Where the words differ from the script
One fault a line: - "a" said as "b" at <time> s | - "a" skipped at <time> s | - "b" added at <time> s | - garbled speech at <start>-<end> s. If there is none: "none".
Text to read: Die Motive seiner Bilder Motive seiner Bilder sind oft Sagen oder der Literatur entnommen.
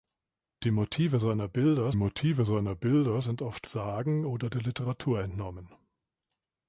none